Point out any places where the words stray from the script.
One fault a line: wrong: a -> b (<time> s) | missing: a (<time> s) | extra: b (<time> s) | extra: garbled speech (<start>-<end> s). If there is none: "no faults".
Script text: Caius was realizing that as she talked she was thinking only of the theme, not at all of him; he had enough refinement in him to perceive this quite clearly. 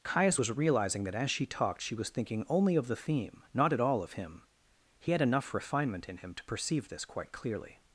no faults